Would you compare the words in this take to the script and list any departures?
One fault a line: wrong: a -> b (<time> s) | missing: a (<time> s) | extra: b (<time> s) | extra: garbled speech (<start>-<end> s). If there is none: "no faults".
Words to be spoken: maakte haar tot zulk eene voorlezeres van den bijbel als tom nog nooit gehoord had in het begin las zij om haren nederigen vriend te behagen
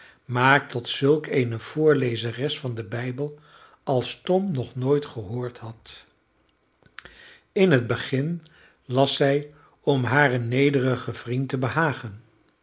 missing: haar (0.8 s)